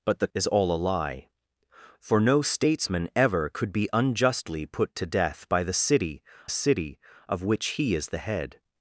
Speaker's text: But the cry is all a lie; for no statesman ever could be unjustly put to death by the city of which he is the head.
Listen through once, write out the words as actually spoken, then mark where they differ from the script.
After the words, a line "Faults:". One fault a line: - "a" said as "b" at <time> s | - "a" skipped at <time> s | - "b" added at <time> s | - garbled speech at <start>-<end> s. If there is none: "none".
But the is all a lie; for no statesman ever could be unjustly put to death by the city city of which he is the head.
Faults:
- "cry" skipped at 0.3 s
- "city" added at 6.5 s